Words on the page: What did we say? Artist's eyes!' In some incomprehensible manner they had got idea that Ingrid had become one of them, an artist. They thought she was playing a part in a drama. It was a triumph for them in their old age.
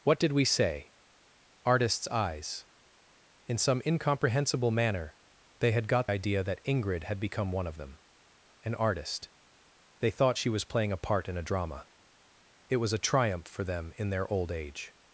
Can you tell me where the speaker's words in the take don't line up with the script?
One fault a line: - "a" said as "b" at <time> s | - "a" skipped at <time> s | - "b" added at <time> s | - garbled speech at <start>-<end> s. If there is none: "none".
none